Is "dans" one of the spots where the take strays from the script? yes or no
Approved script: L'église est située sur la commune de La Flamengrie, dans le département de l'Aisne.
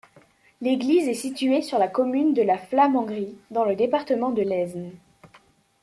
no